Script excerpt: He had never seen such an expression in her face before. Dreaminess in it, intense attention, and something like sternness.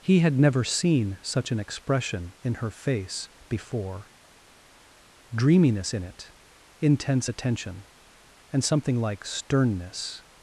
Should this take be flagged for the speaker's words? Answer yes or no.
no